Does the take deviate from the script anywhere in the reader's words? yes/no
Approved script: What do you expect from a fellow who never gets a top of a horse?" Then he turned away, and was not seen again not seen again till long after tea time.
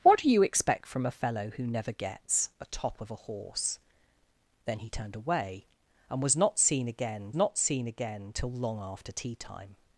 no